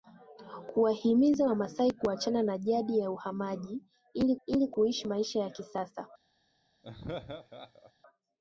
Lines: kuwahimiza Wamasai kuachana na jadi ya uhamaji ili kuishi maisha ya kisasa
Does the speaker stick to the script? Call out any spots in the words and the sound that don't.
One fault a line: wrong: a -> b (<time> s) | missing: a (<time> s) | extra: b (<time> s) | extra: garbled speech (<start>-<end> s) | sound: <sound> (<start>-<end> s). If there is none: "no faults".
extra: ili (4.5 s)
sound: laugh (6.8-7.9 s)